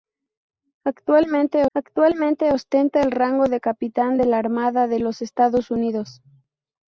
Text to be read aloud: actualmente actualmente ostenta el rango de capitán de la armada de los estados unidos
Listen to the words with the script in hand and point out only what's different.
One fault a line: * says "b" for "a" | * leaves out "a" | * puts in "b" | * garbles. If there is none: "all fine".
all fine